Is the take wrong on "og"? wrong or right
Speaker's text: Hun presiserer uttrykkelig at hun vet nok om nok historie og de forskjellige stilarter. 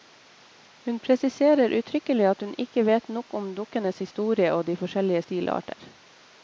right